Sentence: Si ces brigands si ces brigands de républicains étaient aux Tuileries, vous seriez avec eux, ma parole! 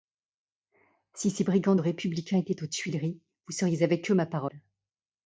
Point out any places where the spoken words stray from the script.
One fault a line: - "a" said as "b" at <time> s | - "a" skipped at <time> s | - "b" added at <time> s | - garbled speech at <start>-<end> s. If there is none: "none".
- "si ces brigands" skipped at 1.8 s